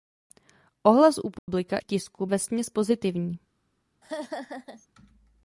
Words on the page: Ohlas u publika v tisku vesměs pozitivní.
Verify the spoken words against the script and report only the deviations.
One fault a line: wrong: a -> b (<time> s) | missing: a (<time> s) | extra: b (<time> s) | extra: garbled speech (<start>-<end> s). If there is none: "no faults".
no faults